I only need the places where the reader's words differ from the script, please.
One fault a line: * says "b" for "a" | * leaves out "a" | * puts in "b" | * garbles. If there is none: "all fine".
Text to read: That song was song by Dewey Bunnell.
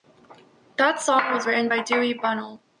* says "written" for "song"